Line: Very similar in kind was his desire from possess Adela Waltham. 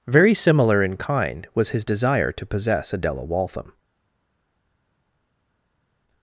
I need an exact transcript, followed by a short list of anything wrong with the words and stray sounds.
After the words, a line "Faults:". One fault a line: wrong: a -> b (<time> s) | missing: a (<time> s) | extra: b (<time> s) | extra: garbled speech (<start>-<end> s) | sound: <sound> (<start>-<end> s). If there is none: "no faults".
Very similar in kind was his desire to possess Adela Waltham.
Faults:
wrong: from -> to (2.3 s)